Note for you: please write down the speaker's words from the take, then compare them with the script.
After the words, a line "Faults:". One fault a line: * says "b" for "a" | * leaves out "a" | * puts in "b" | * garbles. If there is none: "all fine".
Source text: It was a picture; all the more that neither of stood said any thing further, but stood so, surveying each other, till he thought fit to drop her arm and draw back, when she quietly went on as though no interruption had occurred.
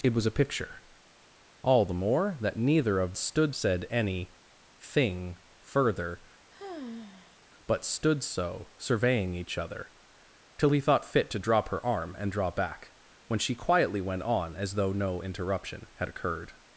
It was a picture; all the more that neither of stood said any thing further, but stood so, surveying each other, till he thought fit to drop her arm and draw back, when she quietly went on as though no interruption had occurred.
Faults:
all fine